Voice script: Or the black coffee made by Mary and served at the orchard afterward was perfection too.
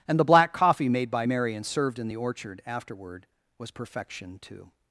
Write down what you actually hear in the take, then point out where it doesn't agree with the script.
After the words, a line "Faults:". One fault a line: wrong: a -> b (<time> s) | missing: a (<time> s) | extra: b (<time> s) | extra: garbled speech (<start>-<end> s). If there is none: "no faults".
And the black coffee made by Mary and served in the orchard afterward was perfection too.
Faults:
wrong: Or -> And (0.1 s)
wrong: at -> in (2.0 s)